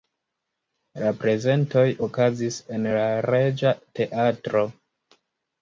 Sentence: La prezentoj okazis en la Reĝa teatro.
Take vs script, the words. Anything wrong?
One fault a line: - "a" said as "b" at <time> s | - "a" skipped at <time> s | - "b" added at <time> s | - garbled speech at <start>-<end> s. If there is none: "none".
none